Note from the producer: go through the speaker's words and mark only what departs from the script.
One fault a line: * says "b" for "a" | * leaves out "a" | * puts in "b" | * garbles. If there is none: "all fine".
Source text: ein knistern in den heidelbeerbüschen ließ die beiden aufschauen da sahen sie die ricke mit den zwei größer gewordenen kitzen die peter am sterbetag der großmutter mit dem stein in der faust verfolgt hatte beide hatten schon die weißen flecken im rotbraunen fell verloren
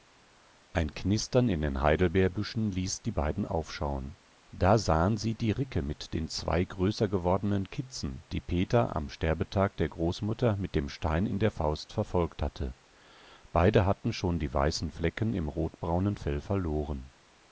all fine